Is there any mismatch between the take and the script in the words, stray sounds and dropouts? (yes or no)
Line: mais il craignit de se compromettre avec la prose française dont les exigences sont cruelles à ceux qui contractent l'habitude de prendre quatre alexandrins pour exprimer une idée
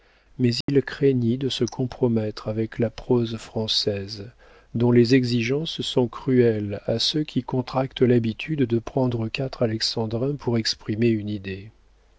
yes